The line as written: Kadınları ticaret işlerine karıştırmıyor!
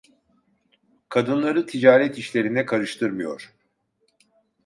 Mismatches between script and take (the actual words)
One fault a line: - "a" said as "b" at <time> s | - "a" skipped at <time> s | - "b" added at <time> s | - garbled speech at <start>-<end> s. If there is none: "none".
none